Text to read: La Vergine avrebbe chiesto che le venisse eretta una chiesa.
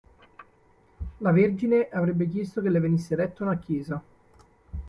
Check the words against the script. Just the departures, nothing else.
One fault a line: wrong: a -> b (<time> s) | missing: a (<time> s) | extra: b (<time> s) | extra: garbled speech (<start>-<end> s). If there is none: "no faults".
no faults